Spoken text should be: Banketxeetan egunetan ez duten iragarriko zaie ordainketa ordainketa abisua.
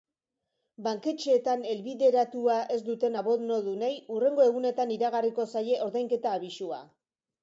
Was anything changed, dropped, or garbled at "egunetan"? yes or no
yes